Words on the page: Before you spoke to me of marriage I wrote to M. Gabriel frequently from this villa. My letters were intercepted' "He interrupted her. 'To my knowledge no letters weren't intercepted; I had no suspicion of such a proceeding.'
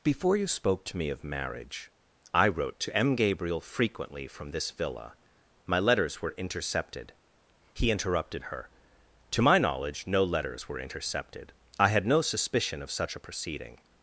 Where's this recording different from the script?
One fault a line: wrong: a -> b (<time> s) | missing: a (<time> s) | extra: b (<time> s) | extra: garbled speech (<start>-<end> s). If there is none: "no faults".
wrong: weren't -> were (10.7 s)